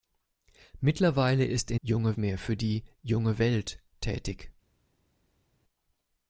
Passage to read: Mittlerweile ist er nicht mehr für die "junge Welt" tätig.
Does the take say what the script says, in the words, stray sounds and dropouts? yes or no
no